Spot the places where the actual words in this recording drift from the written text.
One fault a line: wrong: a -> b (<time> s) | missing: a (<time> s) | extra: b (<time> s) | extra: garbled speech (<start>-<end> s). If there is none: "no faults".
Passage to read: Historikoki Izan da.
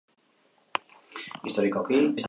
no faults